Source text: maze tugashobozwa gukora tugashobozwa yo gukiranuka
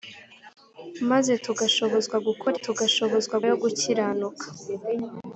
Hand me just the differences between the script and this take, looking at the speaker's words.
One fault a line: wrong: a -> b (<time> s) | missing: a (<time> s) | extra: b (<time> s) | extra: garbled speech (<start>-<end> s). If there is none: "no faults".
no faults